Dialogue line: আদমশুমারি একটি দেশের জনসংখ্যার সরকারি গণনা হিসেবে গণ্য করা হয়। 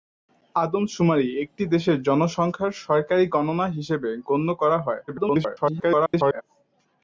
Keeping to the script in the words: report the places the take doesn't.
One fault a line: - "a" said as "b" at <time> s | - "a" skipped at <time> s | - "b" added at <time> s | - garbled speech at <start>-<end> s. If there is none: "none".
- garbled speech at 5.1-6.4 s